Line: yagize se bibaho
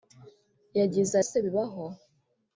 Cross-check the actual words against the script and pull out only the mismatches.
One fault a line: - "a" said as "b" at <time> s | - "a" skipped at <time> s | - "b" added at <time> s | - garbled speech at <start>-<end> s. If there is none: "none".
none